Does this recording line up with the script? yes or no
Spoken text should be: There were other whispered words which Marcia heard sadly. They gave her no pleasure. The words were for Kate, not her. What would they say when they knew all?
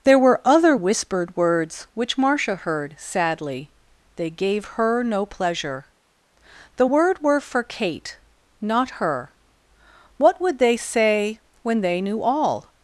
no